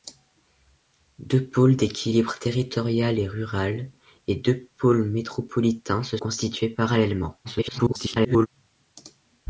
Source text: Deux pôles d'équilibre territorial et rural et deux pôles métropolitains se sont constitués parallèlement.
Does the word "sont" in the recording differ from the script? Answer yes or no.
yes